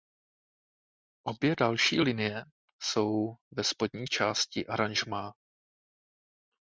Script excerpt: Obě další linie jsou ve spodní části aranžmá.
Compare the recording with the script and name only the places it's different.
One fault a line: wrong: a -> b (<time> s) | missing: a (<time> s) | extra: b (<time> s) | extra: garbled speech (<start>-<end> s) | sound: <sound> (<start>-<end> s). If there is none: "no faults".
no faults